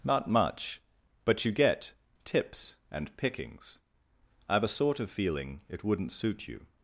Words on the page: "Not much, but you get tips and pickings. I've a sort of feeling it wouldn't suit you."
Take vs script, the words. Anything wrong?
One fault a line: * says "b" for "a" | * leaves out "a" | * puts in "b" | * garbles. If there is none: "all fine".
all fine